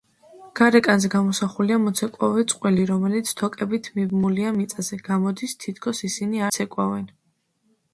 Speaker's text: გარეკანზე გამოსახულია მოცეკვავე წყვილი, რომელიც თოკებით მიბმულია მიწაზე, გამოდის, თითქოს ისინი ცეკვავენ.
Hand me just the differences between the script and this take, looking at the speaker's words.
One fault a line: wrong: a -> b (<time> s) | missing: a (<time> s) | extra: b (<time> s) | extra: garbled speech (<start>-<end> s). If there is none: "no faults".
no faults